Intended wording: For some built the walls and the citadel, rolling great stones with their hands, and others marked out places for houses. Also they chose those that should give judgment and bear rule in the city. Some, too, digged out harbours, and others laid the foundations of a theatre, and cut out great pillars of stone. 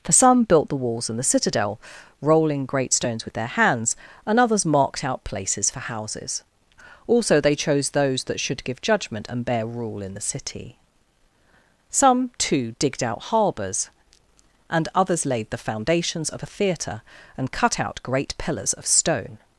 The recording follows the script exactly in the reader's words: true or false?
true